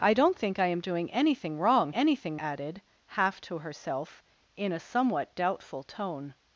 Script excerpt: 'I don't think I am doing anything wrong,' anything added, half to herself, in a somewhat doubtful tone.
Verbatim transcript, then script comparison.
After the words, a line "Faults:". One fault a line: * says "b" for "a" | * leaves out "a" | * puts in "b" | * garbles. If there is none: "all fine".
'I don't think I am doing anything wrong,' anything added, half to herself, in a somewhat doubtful tone.
Faults:
all fine